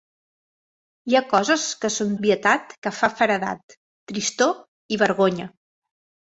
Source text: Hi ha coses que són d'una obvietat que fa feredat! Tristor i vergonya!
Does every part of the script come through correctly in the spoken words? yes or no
no